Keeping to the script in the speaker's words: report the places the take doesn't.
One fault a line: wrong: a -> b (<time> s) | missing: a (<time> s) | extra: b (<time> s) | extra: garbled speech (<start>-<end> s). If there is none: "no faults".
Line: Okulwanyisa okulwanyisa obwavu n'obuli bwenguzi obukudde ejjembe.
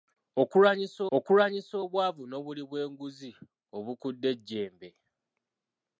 no faults